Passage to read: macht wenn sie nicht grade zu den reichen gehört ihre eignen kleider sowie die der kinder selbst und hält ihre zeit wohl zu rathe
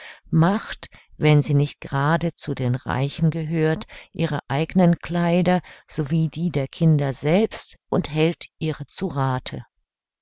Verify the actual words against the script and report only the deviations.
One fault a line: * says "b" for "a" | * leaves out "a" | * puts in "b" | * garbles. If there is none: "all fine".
* leaves out "zeit wohl"